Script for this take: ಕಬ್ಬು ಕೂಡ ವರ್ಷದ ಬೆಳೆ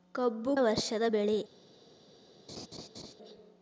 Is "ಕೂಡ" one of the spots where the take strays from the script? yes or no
yes